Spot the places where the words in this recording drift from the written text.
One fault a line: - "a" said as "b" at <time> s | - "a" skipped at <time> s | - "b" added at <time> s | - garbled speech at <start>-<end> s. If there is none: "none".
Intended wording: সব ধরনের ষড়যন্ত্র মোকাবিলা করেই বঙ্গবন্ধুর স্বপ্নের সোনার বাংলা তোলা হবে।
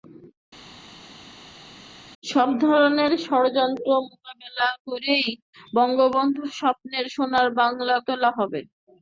none